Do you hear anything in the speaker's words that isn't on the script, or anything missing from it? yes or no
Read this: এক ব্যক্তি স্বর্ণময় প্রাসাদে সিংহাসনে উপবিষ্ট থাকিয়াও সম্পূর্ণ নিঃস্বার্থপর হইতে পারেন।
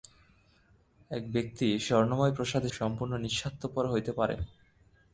yes